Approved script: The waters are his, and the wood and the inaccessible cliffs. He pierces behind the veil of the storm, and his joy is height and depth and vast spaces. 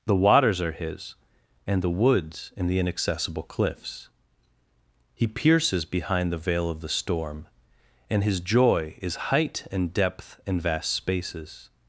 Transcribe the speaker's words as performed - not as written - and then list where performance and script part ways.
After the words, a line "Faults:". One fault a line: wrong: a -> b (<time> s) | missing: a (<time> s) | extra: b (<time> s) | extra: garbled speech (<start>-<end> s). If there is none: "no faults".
The waters are his, and the woods and the inaccessible cliffs. He pierces behind the veil of the storm, and his joy is height and depth and vast spaces.
Faults:
wrong: wood -> woods (1.9 s)